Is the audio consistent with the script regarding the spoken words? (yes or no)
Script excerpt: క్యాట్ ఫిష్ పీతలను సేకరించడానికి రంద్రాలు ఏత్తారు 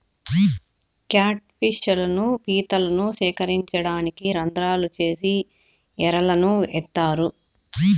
no